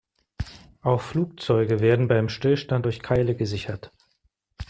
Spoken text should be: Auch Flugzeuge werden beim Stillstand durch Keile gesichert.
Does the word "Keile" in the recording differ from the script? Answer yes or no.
no